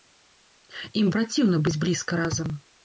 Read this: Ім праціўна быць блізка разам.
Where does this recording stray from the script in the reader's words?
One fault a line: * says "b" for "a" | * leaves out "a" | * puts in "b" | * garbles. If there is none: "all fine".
all fine